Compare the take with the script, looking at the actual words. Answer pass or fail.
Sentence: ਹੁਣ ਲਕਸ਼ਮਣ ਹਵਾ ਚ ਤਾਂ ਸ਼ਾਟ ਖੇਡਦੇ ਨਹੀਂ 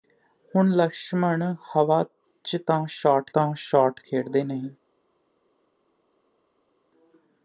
fail